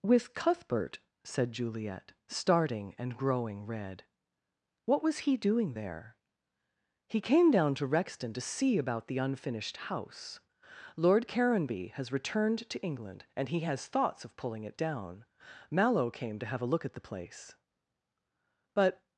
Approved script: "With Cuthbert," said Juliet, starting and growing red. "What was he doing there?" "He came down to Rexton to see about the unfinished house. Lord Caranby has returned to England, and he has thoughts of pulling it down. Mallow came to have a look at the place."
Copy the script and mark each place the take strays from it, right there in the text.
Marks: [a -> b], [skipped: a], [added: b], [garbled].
"With Cuthbert," said Juliet, starting and growing red. "What was he doing there?" "He came down to Rexton to see about the unfinished house. Lord Caranby has returned to England, and he has thoughts of pulling it down. Mallow came to have a look at the place." [added: But]